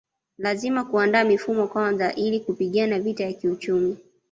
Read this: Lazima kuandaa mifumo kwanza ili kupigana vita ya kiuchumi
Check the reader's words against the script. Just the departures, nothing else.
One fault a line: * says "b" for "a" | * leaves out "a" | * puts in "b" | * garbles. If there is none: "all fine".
all fine